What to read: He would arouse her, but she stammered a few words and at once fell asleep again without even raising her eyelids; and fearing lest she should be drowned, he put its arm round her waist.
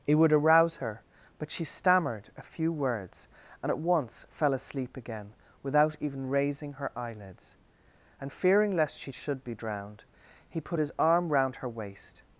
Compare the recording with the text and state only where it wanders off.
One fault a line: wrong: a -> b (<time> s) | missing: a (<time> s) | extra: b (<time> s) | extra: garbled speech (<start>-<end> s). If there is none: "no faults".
wrong: its -> his (10.8 s)